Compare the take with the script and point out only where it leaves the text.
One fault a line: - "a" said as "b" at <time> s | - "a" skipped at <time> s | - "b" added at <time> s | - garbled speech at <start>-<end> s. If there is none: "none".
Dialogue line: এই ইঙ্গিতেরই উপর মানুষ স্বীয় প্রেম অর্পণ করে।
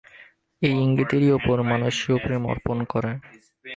none